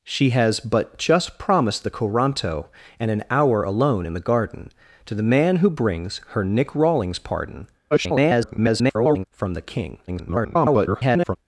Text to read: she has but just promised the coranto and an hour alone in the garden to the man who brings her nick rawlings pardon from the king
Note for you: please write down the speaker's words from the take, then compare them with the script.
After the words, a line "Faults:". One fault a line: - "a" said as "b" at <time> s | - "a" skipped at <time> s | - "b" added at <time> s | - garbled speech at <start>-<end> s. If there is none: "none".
she has but just promised the coranto and an hour alone in the garden to the man who brings her nick rawlings pardon [garbled] from the king [garbled]
Faults:
- garbled speech at 7.9-9.3 s
- garbled speech at 10.1-11.4 s